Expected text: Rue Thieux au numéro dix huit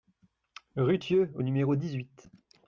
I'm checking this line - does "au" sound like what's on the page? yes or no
yes